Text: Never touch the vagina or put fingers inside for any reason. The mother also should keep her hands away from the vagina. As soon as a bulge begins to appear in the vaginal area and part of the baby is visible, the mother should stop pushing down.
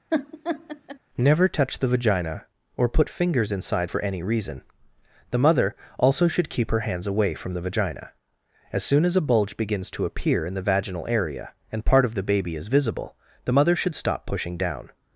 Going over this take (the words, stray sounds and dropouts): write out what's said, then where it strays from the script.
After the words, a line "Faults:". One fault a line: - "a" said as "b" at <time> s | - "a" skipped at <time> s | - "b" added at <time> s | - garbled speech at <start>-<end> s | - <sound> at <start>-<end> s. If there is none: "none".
Never touch the vagina or put fingers inside for any reason. The mother also should keep her hands away from the vagina. As soon as a bulge begins to appear in the vaginal area and part of the baby is visible, the mother should stop pushing down.
Faults:
- laugh at 0.1-1.0 s